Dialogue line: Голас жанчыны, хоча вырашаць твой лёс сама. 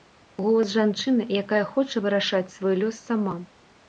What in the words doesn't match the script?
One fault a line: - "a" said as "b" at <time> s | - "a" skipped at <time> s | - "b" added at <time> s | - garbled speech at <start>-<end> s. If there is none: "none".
- "якая" added at 1.4 s
- "твой" said as "свой" at 2.5 s